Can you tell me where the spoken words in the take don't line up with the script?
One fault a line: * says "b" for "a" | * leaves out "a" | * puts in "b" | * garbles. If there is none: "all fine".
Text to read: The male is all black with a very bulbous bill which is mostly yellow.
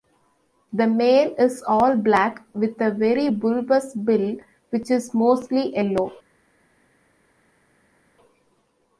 all fine